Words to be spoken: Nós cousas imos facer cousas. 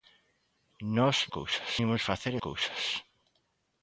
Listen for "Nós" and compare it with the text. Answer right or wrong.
right